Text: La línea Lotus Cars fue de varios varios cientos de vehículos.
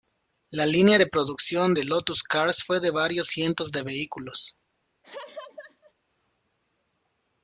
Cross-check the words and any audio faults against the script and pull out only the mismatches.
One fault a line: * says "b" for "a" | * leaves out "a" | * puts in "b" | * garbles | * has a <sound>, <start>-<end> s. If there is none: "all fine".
* puts in "de producción de"
* leaves out "varios"
* has a laugh, 5.0-5.9 s